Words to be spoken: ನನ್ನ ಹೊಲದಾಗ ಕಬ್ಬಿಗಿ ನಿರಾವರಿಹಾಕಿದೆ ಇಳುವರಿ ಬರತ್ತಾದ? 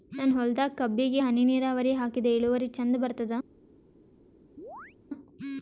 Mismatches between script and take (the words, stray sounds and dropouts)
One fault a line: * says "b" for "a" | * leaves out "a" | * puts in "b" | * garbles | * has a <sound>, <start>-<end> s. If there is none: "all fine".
* puts in "ಹನಿ"
* puts in "ಚಂದ"
* has a chirp, 4.6-5.0 s